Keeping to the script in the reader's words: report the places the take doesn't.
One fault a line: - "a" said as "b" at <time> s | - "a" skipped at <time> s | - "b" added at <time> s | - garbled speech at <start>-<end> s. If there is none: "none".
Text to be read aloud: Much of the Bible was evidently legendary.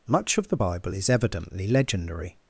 - "was" said as "is" at 0.9 s